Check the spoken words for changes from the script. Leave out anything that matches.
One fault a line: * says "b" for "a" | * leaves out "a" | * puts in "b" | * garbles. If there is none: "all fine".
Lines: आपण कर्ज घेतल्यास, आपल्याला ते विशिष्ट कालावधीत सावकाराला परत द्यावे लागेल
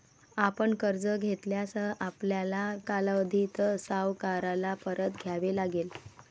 * leaves out "ते विशिष्ट"